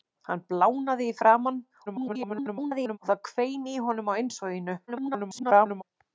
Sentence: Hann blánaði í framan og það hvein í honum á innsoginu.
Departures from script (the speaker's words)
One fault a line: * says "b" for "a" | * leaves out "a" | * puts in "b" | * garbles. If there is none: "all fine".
* garbles
* garbles